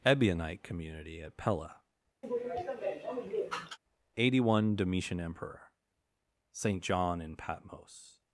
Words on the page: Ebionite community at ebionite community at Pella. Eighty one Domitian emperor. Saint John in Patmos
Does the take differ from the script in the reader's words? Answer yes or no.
yes